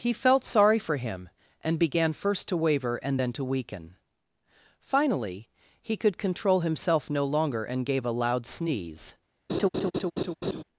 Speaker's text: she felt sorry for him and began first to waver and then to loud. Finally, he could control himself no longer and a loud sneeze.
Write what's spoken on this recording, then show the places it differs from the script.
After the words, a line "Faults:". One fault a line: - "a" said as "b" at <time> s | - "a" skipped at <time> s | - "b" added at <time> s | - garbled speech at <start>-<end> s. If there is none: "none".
he felt sorry for him and began first to waver and then to weaken. Finally, he could control himself no longer and gave a loud sneeze.
Faults:
- "she" said as "he" at 0.0 s
- "loud" said as "weaken" at 3.4 s
- "gave" added at 7.8 s